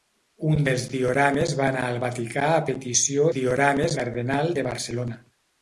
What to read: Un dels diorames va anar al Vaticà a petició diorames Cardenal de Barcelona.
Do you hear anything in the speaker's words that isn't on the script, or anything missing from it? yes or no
no